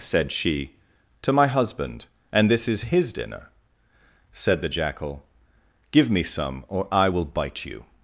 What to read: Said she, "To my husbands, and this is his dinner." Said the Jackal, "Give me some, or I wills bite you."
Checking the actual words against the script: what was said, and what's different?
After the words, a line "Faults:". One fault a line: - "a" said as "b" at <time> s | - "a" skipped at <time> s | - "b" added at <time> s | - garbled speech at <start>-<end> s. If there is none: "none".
Said she, "To my husband, and this is his dinner." Said the Jackal, "Give me some, or I will bite you."
Faults:
- "husbands" said as "husband" at 1.5 s
- "wills" said as "will" at 7.1 s